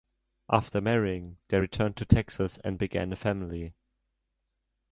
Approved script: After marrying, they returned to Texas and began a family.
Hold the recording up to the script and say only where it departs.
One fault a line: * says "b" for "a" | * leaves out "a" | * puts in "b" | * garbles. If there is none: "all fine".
all fine